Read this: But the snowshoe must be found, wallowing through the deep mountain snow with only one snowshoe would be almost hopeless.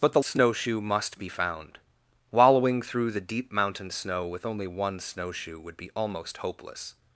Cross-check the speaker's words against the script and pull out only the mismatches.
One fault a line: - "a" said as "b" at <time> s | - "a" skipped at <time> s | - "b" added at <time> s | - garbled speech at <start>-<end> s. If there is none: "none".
none